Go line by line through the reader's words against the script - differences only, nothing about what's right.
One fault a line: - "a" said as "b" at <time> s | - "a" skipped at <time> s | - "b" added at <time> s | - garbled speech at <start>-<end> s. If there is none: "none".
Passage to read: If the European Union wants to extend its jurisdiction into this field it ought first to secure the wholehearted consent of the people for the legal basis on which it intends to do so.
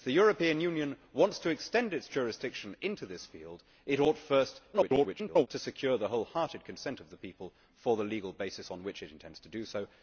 - garbled speech at 4.7-5.5 s